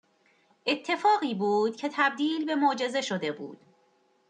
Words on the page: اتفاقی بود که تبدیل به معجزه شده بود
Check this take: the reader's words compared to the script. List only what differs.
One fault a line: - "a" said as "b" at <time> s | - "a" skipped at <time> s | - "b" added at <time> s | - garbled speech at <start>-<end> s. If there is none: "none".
none